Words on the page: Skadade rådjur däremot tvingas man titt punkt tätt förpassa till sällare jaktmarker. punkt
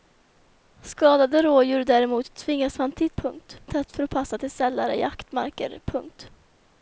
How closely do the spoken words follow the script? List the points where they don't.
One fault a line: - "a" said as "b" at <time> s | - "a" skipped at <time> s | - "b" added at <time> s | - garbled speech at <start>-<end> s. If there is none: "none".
none